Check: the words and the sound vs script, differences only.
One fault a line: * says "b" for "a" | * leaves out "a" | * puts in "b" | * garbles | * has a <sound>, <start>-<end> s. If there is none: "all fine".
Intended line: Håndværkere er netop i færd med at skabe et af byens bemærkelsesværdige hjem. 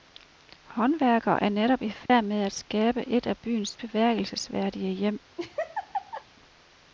* has a dropout, 2.1-2.1 s
* has a laugh, 5.4-6.2 s